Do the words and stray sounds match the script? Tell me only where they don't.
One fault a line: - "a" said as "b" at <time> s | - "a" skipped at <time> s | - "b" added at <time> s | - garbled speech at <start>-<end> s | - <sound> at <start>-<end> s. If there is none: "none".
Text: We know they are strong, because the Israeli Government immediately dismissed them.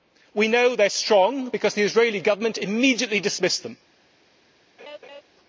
- laugh at 4.8-5.2 s